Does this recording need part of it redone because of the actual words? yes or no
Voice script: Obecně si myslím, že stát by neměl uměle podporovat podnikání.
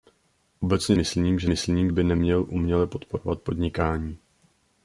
yes